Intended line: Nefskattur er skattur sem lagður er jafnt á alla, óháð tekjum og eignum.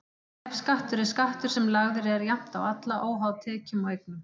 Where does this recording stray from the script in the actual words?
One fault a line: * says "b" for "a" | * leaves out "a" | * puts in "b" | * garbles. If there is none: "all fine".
all fine